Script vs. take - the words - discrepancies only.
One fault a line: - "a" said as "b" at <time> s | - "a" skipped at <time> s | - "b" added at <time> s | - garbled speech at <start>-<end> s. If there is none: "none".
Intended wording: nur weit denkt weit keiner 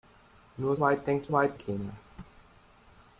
none